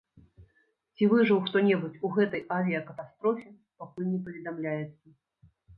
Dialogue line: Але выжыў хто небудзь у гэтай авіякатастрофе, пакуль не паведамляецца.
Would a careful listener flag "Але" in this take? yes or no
yes